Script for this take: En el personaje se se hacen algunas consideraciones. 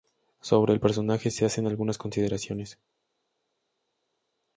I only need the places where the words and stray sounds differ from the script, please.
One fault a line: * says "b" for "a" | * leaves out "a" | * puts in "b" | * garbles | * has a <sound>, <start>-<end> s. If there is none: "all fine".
* says "Sobre" for "En"
* leaves out "se"